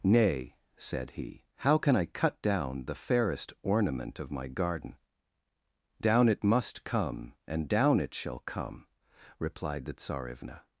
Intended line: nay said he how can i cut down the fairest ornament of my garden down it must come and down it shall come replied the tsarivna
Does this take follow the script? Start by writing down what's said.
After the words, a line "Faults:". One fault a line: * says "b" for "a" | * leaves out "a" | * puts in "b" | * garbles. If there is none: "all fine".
nay said he how can i cut down the fairest ornament of my garden down it must come and down it shall come replied the tsarivna
Faults:
all fine